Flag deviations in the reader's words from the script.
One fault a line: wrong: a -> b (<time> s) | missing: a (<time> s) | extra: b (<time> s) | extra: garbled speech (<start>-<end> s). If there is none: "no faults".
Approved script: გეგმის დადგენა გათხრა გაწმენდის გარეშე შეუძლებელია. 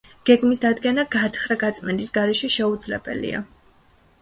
no faults